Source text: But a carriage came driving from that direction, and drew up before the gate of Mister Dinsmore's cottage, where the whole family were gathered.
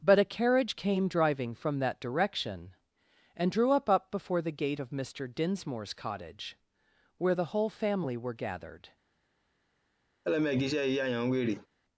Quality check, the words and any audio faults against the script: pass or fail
fail